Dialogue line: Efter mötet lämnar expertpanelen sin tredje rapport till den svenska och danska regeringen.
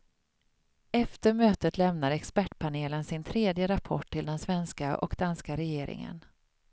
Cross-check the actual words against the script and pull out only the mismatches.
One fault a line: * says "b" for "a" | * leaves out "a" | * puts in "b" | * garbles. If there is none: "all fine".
all fine